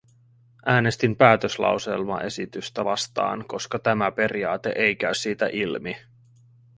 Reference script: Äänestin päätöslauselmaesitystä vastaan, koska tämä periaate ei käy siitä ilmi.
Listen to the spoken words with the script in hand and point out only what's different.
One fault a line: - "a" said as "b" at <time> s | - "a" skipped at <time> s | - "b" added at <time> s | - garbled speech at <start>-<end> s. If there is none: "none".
none